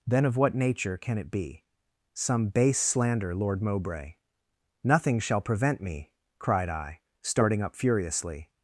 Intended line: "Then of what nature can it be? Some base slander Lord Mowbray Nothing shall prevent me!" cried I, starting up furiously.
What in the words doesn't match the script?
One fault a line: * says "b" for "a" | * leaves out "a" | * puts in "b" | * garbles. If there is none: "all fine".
all fine